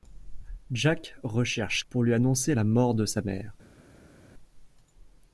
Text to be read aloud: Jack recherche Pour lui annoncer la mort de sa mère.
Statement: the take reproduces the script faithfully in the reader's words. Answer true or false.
true